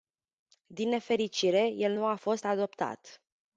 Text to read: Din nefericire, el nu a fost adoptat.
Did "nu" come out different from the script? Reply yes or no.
no